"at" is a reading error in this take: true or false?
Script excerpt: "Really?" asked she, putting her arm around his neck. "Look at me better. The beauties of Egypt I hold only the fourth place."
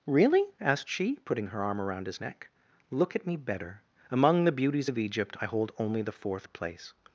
false